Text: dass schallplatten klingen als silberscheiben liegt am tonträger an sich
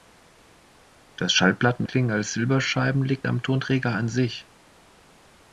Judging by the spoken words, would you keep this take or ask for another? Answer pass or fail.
pass